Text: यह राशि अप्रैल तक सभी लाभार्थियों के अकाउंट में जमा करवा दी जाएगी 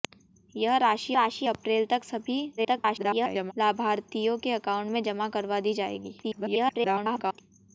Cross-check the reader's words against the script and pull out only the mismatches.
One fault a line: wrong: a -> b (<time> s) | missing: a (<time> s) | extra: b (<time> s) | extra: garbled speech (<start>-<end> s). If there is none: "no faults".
extra: राशि (1.1 s)
extra: garbled speech (2.6-3.5 s)
extra: garbled speech (6.2-7.4 s)